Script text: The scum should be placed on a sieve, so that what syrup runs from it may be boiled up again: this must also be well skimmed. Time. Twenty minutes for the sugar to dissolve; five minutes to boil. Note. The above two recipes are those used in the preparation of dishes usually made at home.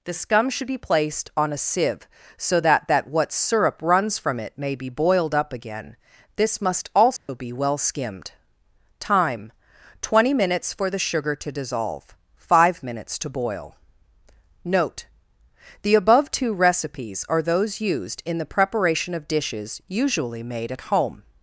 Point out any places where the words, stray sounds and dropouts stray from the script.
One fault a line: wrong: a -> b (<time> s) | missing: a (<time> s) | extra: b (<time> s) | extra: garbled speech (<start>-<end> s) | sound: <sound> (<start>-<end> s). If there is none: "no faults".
extra: that (2.9 s)
sound: dropout (7.2-7.3 s)